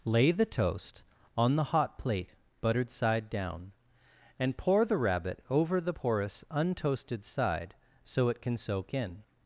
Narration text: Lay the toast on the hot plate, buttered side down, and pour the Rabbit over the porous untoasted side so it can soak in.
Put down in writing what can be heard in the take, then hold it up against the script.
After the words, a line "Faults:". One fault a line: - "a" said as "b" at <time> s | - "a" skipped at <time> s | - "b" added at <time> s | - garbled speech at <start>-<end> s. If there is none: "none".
Lay the toast on the hot plate, buttered side down, and pour the Rabbit over the porous untoasted side so it can soak in.
Faults:
none